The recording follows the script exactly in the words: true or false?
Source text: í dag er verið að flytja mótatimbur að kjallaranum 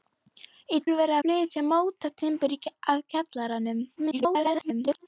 false